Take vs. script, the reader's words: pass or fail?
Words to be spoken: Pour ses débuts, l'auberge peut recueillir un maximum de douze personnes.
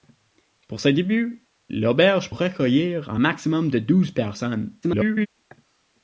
fail